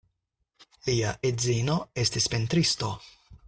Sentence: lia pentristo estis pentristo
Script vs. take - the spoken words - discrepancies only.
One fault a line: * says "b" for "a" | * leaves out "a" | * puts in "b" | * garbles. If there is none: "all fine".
* says "edzino" for "pentristo"